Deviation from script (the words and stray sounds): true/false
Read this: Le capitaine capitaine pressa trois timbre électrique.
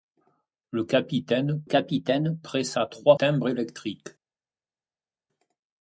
false